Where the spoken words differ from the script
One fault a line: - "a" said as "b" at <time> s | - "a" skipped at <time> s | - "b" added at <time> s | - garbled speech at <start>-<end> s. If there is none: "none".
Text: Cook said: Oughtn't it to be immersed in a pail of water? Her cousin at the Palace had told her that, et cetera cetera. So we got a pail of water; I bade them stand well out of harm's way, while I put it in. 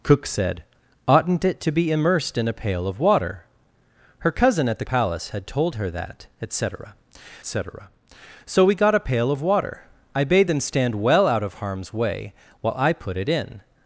none